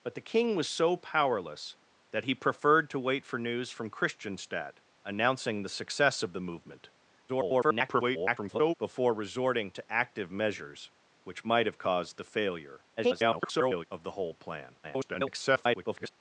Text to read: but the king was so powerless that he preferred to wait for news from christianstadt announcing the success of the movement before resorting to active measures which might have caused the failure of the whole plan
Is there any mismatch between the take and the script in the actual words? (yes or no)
yes